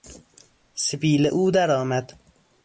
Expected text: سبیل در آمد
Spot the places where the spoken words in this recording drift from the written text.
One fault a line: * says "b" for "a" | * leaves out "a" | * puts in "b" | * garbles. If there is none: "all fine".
* puts in "او"